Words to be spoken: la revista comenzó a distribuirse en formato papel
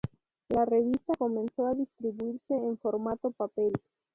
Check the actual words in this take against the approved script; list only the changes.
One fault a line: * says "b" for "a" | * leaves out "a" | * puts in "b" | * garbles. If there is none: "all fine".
all fine